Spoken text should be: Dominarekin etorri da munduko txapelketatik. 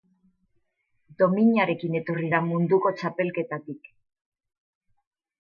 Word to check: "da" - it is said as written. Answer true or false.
true